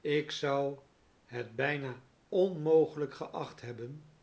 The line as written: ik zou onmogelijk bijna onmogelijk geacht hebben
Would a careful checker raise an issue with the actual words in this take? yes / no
yes